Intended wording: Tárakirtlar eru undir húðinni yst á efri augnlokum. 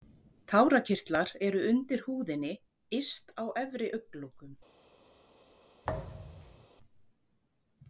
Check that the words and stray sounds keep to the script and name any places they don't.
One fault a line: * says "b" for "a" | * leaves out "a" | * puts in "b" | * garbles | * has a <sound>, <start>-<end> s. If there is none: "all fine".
* has a thud, 5.8-6.7 s